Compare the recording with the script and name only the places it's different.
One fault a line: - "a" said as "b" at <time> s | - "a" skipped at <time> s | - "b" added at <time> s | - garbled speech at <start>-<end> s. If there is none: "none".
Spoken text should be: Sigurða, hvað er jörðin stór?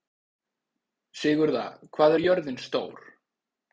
none